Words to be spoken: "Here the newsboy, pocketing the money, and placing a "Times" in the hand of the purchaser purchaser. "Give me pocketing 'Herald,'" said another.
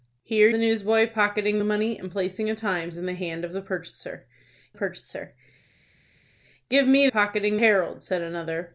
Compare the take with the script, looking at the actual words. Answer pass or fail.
pass